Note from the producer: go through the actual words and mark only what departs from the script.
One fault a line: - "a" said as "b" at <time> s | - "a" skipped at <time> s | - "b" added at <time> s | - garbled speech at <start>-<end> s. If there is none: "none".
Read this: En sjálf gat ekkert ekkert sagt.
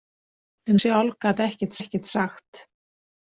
none